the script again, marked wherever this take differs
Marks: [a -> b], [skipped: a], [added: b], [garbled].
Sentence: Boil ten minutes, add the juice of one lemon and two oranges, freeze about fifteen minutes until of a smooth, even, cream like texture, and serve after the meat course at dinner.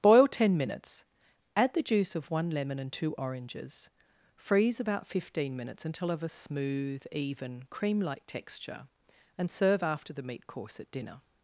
Boil ten minutes, add the juice of one lemon and two oranges, freeze about fifteen minutes until of a smooth, even, cream like texture, and serve after the meat course at dinner.